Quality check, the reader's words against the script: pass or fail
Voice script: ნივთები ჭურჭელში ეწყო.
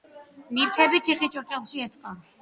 fail